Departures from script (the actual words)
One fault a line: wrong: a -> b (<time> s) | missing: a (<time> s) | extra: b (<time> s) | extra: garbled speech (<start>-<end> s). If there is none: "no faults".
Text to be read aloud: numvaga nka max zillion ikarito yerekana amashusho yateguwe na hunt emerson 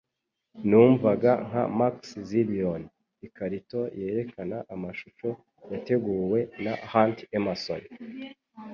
no faults